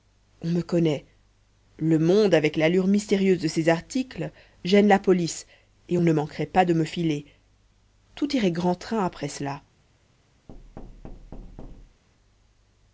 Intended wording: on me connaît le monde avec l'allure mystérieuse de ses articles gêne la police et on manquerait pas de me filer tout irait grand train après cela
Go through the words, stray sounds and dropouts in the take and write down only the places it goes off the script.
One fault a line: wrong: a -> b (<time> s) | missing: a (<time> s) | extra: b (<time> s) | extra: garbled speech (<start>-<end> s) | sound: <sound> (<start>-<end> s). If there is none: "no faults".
extra: ne (6.0 s)
sound: thud (10.5-12.0 s)